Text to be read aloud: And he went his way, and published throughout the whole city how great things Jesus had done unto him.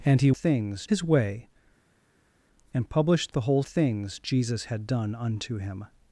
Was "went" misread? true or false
true